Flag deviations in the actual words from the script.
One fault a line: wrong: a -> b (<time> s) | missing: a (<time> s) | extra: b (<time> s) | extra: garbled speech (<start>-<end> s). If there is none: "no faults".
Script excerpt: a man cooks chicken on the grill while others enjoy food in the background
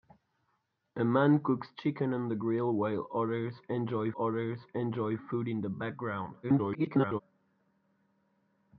extra: others enjoy (4.2 s)
extra: garbled speech (6.4-7.2 s)